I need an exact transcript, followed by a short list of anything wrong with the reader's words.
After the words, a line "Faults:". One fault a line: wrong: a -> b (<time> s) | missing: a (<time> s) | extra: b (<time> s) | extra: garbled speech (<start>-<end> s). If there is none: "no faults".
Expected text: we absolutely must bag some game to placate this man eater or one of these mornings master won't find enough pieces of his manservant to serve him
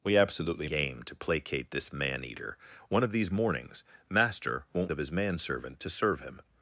we absolutely game to placate this man eater one of these mornings master won't of his manservant to serve him
Faults:
missing: must bag some (0.7 s)
missing: or (2.6 s)
missing: find enough pieces (4.9 s)